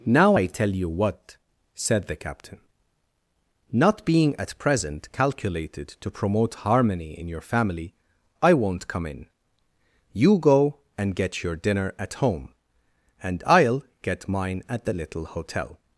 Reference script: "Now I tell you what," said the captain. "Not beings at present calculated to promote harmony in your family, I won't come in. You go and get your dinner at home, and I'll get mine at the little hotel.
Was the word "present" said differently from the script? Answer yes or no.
no